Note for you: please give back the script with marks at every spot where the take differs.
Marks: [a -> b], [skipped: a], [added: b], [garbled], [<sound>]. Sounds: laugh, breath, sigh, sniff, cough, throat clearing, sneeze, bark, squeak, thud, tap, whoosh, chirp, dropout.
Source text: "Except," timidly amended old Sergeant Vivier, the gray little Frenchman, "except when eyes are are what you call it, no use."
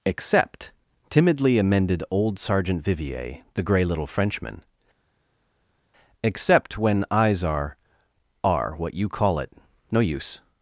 "Except," timidly amended old Sergeant Vivier, the gray little Frenchman, "except when eyes are are what you call it, no use."